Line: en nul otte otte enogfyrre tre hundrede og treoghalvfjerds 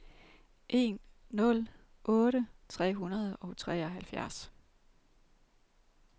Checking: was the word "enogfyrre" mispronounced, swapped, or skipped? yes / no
yes